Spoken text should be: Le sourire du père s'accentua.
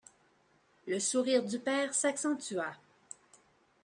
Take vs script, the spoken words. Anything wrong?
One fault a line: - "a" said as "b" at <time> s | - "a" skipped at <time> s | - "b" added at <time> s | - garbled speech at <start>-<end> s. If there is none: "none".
none